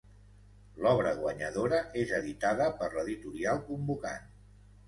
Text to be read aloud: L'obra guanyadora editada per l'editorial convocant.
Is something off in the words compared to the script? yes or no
yes